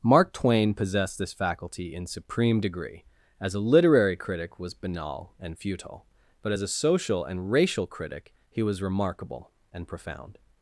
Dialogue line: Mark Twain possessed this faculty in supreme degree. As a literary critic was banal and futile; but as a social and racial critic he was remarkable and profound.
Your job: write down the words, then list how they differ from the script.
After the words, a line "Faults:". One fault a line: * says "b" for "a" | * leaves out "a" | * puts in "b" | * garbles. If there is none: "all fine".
Mark Twain possessed this faculty in supreme degree. As a literary critic was banal and futile; but as a social and racial critic he was remarkable and profound.
Faults:
all fine